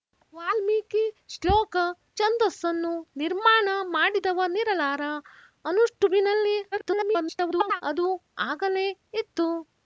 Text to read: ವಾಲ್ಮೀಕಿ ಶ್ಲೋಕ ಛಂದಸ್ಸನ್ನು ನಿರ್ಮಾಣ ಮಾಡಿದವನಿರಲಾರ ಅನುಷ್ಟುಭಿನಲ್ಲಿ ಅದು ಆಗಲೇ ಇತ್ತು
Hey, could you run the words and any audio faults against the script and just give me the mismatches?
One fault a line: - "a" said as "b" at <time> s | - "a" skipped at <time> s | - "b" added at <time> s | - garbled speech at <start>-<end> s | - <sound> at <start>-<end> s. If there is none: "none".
- garbled speech at 6.7-7.8 s